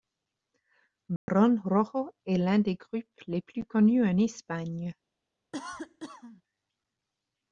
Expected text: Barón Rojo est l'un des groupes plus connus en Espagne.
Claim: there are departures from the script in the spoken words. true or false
true